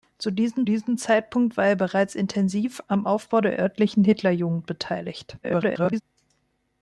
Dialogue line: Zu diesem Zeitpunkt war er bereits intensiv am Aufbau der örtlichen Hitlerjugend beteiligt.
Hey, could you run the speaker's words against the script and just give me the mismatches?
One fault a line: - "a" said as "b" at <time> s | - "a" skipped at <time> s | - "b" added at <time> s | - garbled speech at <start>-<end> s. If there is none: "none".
- "diesem" added at 0.6 s
- garbled speech at 5.4-6.0 s